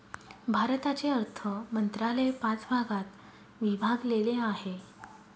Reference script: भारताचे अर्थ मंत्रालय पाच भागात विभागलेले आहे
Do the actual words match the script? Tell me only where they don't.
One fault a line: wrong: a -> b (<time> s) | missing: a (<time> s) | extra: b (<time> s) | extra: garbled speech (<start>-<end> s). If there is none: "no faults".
no faults